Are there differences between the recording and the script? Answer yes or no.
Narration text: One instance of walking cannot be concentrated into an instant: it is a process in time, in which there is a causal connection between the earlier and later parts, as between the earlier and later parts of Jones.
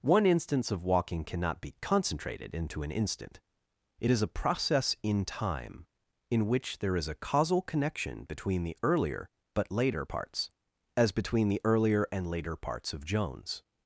yes